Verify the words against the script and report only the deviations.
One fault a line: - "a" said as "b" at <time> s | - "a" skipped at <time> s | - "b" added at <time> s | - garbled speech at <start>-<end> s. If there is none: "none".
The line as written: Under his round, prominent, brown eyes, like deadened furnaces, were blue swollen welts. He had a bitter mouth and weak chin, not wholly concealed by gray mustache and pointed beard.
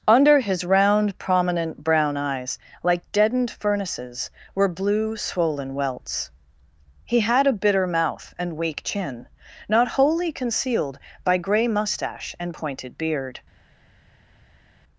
none